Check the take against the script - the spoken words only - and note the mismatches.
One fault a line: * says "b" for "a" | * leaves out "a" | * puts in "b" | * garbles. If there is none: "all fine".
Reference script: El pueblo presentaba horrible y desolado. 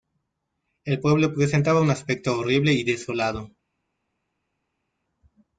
* puts in "un aspecto"